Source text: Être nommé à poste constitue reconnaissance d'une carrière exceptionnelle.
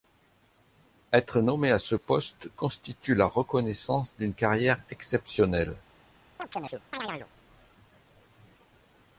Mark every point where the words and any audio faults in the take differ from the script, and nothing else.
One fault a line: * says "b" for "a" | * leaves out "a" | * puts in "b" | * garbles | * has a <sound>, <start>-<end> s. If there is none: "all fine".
* puts in "ce"
* puts in "la"
* has a chirp, 6.4-7.3 s